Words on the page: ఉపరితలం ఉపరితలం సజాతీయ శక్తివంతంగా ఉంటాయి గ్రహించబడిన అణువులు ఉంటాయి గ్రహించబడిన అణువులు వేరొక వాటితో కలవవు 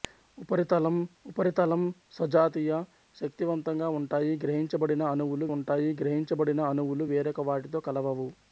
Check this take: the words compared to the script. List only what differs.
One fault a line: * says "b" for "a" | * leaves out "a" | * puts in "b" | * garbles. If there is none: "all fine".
all fine